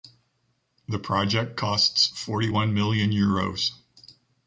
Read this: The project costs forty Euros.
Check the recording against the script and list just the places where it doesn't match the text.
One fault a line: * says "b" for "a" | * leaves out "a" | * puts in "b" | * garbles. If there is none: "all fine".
* puts in "one million"